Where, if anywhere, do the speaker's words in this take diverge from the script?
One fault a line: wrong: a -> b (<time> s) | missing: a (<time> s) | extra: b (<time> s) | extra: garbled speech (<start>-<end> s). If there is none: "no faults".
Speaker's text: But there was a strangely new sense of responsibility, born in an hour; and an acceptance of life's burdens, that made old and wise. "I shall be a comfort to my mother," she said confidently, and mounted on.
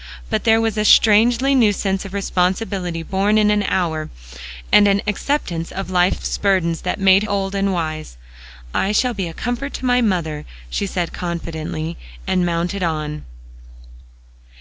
no faults